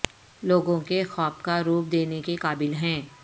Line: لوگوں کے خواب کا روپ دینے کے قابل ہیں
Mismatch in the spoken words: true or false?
false